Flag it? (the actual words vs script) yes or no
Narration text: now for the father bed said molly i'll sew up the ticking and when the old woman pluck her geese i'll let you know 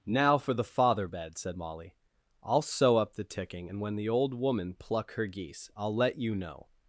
no